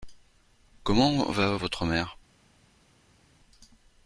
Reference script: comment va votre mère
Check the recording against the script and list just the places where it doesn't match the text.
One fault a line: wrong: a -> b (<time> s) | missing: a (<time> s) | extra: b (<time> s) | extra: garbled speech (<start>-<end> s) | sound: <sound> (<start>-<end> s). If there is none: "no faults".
no faults